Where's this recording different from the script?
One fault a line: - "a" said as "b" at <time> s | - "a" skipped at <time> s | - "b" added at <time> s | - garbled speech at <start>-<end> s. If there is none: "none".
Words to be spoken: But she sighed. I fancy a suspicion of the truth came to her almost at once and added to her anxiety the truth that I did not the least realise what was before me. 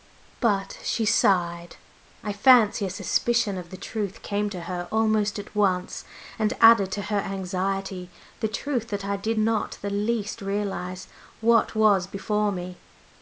none